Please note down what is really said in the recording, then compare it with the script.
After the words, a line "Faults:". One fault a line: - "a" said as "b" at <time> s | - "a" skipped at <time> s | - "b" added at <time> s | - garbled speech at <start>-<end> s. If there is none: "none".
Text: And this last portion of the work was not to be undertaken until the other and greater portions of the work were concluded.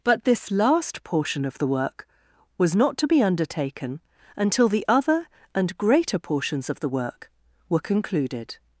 But this last portion of the work was not to be undertaken until the other and greater portions of the work were concluded.
Faults:
- "And" said as "But" at 0.0 s